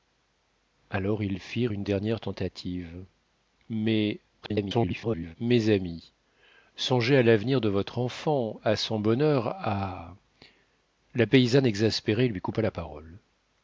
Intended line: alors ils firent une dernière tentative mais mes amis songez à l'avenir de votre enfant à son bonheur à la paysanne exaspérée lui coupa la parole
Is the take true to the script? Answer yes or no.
no